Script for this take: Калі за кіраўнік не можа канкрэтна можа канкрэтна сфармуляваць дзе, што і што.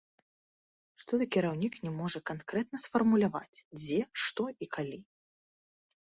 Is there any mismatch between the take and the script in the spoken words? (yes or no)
yes